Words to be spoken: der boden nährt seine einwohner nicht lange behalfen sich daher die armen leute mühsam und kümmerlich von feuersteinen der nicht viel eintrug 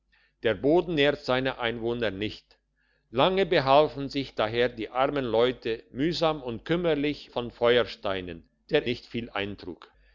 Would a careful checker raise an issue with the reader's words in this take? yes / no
no